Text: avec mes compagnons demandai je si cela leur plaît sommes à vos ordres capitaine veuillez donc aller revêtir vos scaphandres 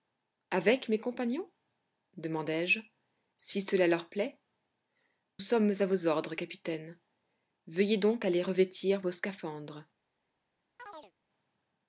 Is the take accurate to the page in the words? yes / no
yes